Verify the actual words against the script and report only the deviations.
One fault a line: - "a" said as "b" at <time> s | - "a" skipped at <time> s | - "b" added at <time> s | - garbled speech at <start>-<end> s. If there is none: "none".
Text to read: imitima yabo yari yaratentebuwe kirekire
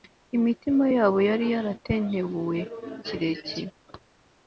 none